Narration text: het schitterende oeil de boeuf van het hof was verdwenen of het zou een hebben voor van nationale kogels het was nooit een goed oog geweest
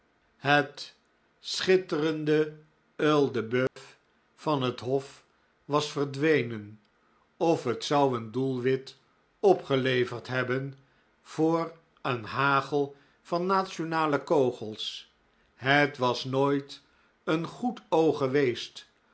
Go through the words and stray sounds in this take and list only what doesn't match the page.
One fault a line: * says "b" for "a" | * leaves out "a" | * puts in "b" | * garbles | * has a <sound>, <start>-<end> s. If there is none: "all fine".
* has a dropout, 3.7-3.8 s
* puts in "doelwit opgeleverd"
* puts in "een hagel"